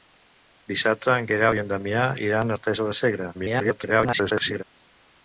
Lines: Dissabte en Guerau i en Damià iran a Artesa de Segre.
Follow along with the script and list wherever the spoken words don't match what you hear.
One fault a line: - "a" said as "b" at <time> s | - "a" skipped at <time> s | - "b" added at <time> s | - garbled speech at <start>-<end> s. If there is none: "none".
- garbled speech at 3.3-4.6 s